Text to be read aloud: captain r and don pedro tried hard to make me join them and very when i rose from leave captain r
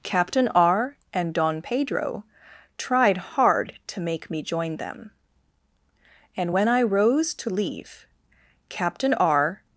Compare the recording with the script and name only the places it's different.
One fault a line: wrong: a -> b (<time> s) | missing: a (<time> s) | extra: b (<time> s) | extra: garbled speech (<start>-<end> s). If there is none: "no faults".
missing: very (6.5 s)
wrong: from -> to (7.3 s)